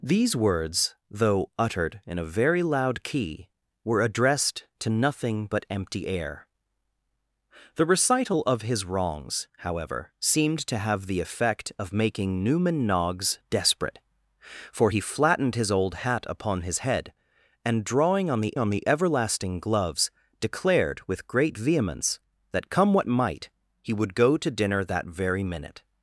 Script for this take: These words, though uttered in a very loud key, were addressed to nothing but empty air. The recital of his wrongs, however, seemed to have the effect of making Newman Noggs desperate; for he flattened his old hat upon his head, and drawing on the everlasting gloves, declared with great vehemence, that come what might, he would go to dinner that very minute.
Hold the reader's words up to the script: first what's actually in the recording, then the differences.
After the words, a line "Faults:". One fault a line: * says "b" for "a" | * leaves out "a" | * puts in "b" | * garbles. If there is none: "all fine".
These words, though uttered in a very loud key, were addressed to nothing but empty air. The recital of his wrongs, however, seemed to have the effect of making Newman Noggs desperate; for he flattened his old hat upon his head, and drawing on the on the everlasting gloves, declared with great vehemence, that come what might, he would go to dinner that very minute.
Faults:
* puts in "on the"